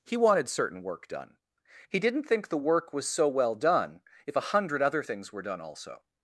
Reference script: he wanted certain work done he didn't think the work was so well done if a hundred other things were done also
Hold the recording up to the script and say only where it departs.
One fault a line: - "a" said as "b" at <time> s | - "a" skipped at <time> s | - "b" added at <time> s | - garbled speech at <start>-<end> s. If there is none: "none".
none